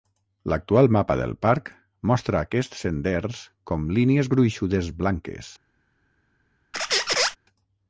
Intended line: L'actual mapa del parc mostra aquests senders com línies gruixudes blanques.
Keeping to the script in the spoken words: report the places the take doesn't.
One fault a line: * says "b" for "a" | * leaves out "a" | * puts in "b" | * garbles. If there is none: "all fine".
all fine